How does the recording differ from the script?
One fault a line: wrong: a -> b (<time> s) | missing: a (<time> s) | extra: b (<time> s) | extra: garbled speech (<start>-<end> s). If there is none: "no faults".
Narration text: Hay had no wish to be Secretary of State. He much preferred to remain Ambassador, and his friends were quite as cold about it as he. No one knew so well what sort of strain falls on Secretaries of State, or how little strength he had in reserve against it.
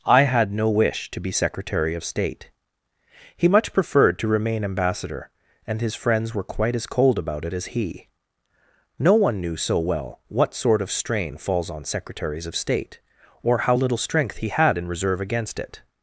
wrong: Hay -> I (0.1 s)